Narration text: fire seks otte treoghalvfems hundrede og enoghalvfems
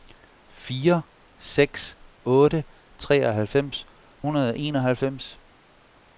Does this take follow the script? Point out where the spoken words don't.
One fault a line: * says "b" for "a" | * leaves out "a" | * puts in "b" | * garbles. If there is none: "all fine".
all fine